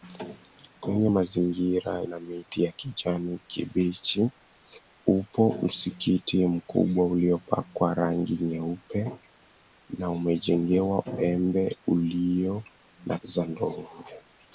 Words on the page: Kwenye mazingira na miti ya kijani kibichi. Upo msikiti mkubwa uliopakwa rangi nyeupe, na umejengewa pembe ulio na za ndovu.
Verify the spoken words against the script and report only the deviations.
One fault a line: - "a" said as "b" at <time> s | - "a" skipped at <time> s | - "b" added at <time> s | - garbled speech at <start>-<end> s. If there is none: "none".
none